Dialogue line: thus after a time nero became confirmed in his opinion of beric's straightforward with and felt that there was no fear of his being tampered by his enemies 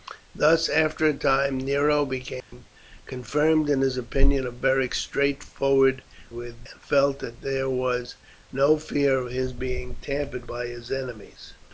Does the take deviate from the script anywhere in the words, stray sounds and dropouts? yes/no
yes